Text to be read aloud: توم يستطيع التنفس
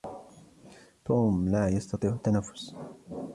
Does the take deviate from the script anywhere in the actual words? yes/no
yes